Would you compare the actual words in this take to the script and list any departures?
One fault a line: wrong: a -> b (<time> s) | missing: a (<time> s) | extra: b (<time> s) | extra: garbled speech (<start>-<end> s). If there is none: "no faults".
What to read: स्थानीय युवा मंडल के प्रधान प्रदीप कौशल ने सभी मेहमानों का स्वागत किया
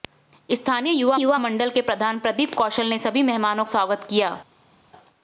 extra: युवा (1.1 s)
missing: का (3.6 s)